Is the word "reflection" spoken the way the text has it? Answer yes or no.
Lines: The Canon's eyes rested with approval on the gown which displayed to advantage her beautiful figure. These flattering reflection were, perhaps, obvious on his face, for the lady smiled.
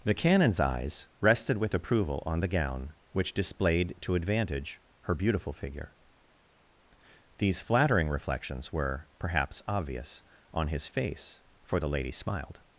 no